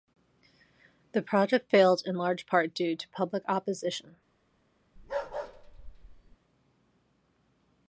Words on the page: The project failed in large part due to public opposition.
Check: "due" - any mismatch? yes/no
no